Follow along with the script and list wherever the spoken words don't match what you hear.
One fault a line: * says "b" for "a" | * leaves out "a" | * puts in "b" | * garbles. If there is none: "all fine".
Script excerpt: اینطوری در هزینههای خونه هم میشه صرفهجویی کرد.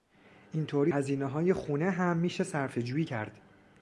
* leaves out "در"